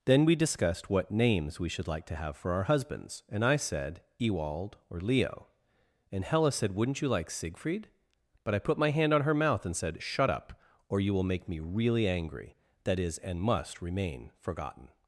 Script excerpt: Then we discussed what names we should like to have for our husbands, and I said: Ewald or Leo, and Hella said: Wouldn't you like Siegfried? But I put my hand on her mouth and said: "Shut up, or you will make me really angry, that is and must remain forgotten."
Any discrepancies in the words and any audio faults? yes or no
no